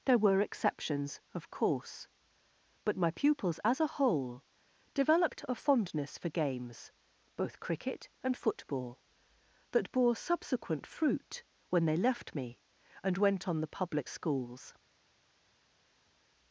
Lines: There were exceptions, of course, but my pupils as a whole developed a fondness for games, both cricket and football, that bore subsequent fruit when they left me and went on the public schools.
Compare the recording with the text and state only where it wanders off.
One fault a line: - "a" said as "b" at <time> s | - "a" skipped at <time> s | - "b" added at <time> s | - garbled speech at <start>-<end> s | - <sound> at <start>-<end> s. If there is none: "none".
none